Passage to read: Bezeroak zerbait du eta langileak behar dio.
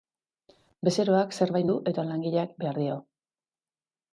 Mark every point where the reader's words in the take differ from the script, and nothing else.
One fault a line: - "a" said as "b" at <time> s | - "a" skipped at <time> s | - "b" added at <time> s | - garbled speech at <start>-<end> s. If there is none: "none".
none